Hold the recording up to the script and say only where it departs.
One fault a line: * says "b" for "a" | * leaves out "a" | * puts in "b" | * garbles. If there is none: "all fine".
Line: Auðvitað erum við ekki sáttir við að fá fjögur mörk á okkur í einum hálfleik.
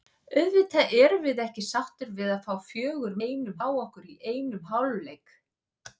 * says "einum" for "mörk"